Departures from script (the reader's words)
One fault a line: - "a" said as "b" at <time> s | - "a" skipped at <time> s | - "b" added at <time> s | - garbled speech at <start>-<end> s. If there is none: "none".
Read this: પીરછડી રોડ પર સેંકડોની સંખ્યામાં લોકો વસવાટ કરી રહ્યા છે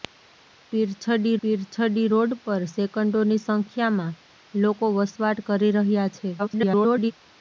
- "પીરછડી" added at 1.4 s
- garbled speech at 6.4-7.1 s